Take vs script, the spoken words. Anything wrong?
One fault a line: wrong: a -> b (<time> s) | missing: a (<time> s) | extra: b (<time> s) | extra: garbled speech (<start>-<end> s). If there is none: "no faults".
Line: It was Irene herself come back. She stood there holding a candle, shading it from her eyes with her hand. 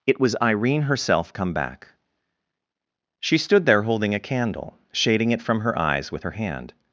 no faults